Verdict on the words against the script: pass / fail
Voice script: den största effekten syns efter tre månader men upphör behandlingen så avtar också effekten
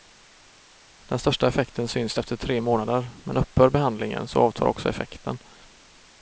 pass